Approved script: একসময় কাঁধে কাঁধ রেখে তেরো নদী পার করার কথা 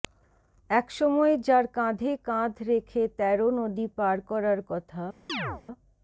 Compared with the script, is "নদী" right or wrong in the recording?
right